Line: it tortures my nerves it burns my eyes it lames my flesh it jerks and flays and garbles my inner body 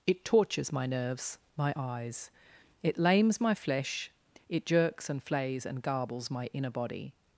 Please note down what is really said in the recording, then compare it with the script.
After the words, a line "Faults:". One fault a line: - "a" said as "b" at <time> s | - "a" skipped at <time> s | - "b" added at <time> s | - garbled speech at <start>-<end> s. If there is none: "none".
it tortures my nerves my eyes it lames my flesh it jerks and flays and garbles my inner body
Faults:
- "it burns" skipped at 1.4 s